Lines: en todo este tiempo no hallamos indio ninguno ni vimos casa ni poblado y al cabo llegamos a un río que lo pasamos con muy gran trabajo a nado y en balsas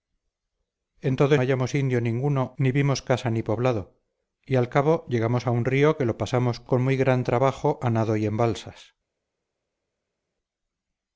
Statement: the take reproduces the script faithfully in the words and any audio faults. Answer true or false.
false